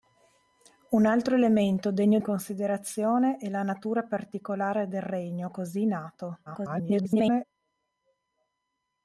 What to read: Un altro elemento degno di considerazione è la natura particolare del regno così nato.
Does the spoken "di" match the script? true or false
false